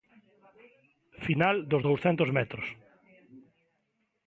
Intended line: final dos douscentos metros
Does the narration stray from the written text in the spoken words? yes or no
no